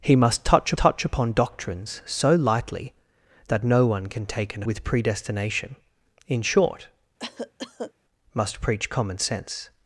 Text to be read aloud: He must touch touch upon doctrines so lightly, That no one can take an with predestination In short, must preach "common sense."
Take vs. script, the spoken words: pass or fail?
pass